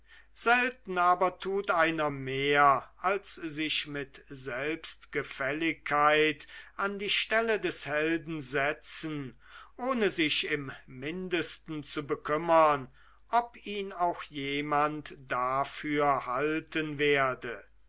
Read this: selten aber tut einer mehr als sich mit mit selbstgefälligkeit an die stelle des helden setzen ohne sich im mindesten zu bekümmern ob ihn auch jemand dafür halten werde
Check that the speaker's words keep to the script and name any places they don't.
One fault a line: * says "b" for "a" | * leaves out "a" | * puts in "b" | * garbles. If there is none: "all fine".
* leaves out "mit"